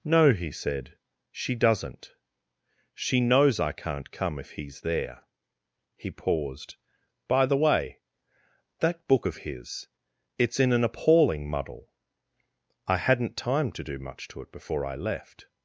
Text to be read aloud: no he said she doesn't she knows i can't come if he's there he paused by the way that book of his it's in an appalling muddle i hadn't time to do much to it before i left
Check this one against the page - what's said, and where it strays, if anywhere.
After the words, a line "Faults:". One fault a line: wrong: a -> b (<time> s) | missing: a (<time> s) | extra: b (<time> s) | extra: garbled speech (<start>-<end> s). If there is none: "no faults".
no he said she doesn't she knows i can't come if he's there he paused by the way that book of his it's in an appalling muddle i hadn't time to do much to it before i left
Faults:
no faults